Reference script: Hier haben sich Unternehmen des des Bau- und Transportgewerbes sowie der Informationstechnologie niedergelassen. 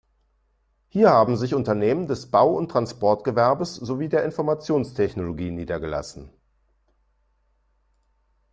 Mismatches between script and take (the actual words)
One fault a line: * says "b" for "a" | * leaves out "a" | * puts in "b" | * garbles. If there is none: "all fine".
* leaves out "des"